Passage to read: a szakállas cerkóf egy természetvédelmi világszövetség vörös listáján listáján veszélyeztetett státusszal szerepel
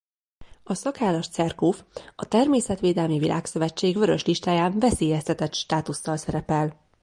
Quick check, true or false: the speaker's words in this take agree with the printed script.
false